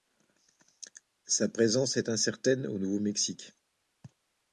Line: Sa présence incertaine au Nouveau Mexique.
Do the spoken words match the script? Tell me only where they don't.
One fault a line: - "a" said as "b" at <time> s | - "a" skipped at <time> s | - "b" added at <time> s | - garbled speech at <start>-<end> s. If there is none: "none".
- "est" added at 1.9 s